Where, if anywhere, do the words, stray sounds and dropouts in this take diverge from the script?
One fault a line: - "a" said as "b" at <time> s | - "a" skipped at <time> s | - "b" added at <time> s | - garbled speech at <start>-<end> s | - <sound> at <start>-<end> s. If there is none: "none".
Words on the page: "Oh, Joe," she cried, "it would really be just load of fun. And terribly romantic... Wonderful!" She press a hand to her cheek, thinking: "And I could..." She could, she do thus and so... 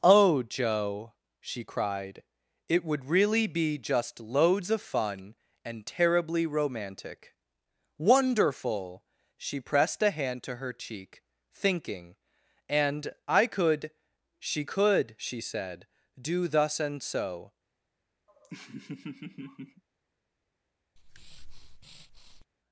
- "load" said as "loads" at 4.2 s
- "press" said as "pressed" at 9.6 s
- "said" added at 15.4 s
- laugh at 18.3-19.8 s
- breath at 21.0-22.4 s